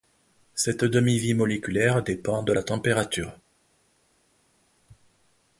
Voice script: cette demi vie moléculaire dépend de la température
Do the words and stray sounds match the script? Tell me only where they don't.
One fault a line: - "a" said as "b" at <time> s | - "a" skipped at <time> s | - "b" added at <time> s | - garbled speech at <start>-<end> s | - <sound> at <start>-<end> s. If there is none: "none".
none